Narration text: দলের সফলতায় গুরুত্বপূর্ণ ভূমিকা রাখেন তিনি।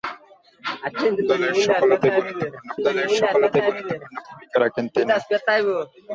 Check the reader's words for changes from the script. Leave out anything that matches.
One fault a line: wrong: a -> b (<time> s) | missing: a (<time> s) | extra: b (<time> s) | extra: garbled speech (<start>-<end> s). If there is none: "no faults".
extra: দলের সফলতায় গুরুত্বপূর্ণ (2.8 s)